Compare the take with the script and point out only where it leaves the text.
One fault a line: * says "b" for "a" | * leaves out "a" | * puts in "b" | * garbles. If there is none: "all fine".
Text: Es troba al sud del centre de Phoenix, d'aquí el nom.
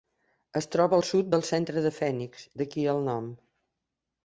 all fine